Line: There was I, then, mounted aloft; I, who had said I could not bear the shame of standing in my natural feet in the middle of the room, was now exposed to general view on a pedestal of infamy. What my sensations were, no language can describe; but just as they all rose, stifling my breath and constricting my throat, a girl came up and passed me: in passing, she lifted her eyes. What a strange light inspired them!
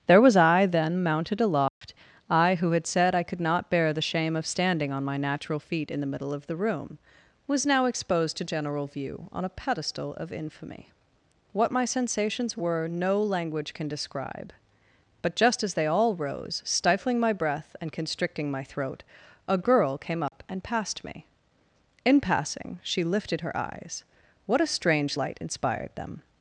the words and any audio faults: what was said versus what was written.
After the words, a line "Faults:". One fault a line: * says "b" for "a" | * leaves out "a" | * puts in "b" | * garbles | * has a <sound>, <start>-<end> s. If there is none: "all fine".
There was I, then, mounted aloft; I, who had said I could not bear the shame of standing on my natural feet in the middle of the room, was now exposed to general view on a pedestal of infamy. What my sensations were, no language can describe; but just as they all rose, stifling my breath and constricting my throat, a girl came up and passed me: in passing, she lifted her eyes. What a strange light inspired them!
Faults:
* has a dropout, 1.7-1.8 s
* says "on" for "in"
* has a dropout, 20.3-20.3 s